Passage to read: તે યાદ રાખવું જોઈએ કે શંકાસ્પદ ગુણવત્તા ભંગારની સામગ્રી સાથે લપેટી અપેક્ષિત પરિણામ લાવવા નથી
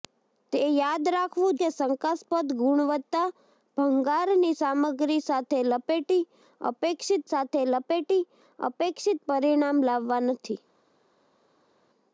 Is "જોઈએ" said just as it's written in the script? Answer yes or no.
no